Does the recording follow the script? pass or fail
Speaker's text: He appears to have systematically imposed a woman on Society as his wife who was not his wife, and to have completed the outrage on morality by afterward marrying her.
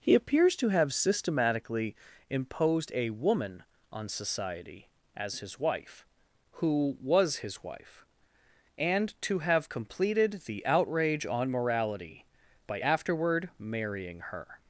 fail